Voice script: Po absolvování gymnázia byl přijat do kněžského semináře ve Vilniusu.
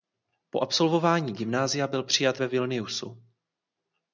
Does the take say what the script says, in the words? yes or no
no